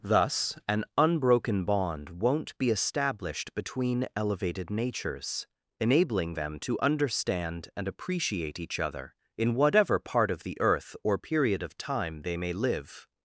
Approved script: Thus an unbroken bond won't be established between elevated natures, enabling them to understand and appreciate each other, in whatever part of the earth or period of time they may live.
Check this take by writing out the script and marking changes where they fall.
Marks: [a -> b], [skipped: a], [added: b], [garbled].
Thus an unbroken bond won't be established between elevated natures, enabling them to understand and appreciate each other, in whatever part of the earth or period of time they may live.